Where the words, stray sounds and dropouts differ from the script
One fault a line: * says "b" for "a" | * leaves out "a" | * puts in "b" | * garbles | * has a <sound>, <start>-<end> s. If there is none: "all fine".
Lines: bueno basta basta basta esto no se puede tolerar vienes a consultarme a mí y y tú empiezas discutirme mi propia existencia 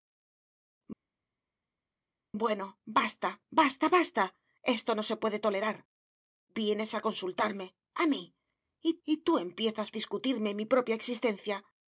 all fine